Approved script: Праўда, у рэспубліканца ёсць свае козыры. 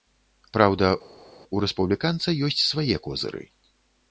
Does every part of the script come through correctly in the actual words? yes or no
yes